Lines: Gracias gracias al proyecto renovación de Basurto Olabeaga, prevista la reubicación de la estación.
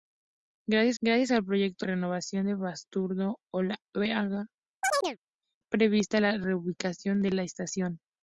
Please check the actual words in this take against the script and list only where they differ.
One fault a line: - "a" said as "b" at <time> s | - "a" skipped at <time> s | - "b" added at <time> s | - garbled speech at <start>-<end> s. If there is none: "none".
none